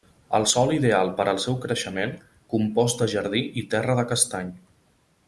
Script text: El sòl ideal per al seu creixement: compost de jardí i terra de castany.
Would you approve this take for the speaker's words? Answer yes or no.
yes